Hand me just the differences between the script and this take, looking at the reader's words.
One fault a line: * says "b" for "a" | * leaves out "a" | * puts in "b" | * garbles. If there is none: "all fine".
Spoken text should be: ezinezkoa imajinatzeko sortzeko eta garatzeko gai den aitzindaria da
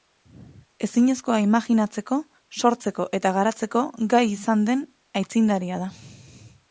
* puts in "izan"